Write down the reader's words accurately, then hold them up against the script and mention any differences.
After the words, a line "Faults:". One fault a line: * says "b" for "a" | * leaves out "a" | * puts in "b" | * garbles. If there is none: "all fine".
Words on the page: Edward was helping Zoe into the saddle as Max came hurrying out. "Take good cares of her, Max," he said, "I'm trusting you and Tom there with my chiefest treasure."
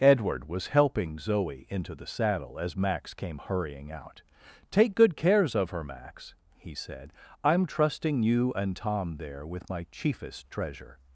Edward was helping Zoe into the saddle as Max came hurrying out. "Take good cares of her, Max," he said, "I'm trusting you and Tom there with my chiefest treasure."
Faults:
all fine